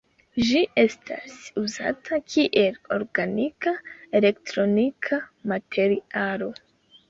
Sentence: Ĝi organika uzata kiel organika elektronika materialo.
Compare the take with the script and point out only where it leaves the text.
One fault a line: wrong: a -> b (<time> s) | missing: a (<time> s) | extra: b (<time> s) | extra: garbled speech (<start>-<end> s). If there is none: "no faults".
wrong: organika -> estas (0.8 s)